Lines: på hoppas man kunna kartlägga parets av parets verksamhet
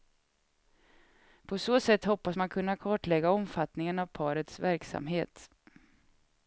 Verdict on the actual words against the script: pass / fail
fail